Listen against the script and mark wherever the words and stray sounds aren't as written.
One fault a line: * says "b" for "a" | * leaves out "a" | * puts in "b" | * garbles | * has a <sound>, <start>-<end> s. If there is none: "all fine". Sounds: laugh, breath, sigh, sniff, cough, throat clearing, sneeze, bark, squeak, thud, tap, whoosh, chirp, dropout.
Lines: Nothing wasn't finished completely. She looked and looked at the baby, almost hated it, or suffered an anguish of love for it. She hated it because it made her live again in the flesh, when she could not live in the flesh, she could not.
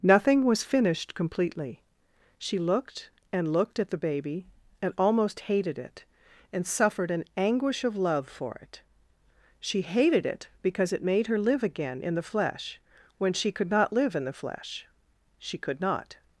* says "was" for "wasn't"
* puts in "and"
* says "and" for "or"